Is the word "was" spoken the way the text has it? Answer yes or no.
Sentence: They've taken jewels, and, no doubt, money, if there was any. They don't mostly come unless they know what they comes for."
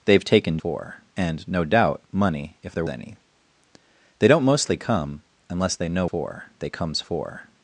no